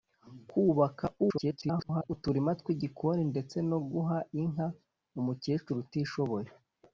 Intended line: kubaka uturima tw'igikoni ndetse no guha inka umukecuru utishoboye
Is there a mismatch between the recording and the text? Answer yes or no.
yes